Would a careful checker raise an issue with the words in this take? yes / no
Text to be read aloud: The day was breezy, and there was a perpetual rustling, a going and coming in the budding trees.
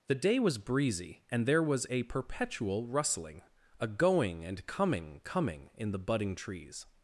yes